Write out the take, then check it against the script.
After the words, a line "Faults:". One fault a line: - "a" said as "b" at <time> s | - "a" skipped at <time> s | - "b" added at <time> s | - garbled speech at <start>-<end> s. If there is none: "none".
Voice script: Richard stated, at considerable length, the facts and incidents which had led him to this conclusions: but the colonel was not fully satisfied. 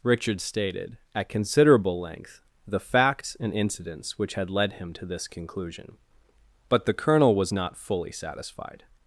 Richard stated, at considerable length, the facts and incidents which had led him to this conclusion: but the colonel was not fully satisfied.
Faults:
- "conclusions" said as "conclusion" at 5.3 s